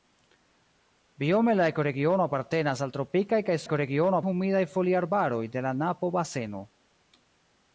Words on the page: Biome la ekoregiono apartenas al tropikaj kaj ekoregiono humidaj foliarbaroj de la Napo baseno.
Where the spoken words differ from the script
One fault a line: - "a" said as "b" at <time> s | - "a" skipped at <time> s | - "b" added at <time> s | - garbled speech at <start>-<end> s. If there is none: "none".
none